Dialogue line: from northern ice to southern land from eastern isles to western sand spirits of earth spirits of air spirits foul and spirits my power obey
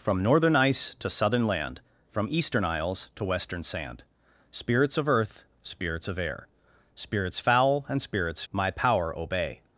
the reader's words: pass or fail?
pass